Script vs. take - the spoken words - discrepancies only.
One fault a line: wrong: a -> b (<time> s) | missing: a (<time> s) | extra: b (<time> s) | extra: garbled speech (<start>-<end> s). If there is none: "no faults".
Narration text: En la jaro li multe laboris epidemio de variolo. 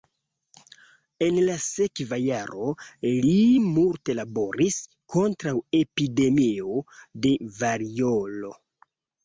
extra: sekva (1.6 s)
extra: kontraŭ (5.2 s)